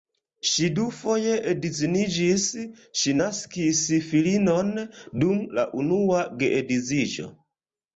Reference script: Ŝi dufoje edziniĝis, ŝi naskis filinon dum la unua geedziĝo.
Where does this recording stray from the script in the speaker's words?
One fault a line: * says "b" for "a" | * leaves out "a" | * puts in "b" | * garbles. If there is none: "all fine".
all fine